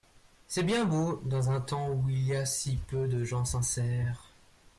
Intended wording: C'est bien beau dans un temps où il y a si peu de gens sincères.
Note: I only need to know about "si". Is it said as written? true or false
true